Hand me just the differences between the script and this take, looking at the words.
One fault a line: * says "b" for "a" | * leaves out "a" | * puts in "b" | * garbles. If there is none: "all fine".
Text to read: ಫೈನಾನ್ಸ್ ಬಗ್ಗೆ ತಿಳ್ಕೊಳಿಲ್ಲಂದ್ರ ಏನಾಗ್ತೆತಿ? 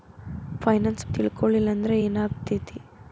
* leaves out "ಬಗ್ಗೆ"